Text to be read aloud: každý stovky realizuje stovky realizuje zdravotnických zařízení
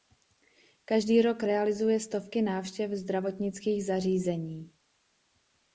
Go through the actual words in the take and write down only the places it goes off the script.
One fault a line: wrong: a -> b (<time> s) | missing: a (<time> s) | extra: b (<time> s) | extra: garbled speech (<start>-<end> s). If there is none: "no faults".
wrong: stovky -> rok (1.2 s)
wrong: realizuje -> návštěv (2.4 s)